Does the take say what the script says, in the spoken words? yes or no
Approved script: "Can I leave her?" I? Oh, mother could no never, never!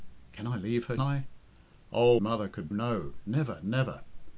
yes